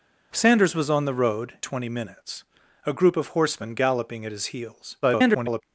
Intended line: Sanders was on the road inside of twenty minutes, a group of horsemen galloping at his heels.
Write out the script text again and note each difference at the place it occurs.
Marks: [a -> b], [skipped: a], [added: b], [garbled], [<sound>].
Sanders was on the road [skipped: inside of] twenty minutes, a group of horsemen galloping at his heels. [garbled]